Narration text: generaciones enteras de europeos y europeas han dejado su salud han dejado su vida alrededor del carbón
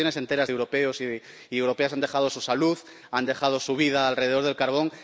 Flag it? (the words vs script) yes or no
no